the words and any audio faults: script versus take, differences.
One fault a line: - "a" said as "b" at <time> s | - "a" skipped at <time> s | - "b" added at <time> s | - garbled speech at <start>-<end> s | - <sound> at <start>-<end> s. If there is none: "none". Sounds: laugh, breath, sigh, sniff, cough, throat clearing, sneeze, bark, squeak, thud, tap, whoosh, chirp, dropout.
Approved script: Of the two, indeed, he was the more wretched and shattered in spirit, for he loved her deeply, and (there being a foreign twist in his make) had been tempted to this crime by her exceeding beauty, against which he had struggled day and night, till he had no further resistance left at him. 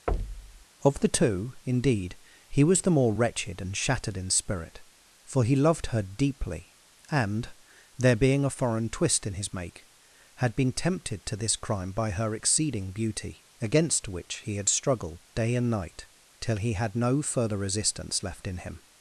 - thud at 0.1-0.6 s
- "at" said as "in" at 18.5 s